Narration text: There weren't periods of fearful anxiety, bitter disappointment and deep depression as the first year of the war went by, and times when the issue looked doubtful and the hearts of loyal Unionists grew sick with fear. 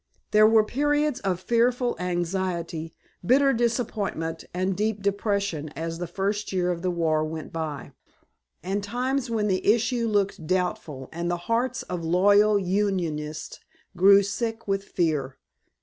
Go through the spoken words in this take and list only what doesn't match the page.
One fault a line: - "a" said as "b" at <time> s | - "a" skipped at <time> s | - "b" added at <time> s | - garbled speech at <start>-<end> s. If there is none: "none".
- "weren't" said as "were" at 0.5 s